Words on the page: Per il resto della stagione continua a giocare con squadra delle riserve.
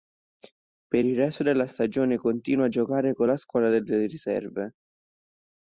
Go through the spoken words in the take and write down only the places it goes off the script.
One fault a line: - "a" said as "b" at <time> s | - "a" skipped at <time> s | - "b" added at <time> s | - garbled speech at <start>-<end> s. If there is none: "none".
- "la" added at 3.3 s